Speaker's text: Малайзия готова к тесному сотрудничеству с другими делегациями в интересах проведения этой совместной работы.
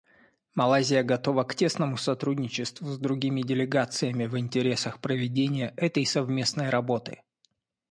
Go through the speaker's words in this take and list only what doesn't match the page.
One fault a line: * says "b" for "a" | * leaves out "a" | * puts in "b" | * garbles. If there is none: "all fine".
all fine